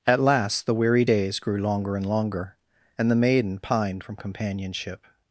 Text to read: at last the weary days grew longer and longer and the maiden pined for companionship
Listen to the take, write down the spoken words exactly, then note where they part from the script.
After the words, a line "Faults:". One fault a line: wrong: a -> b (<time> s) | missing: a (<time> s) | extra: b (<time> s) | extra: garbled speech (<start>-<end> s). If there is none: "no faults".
at last the weary days grew longer and longer and the maiden pined from companionship
Faults:
wrong: for -> from (4.0 s)